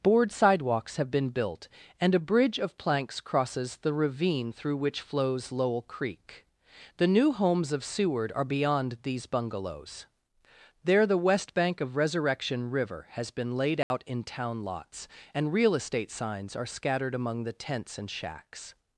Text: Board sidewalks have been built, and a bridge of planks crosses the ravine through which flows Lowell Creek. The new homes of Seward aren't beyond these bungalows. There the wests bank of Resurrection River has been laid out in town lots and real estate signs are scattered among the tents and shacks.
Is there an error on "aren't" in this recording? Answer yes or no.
yes